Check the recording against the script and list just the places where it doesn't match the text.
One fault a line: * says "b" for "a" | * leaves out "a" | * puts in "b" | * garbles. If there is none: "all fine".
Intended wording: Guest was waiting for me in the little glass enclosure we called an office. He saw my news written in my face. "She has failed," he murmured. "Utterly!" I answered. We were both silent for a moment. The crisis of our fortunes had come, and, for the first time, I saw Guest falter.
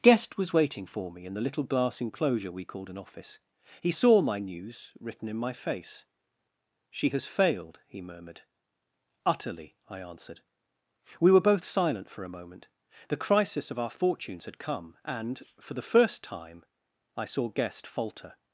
all fine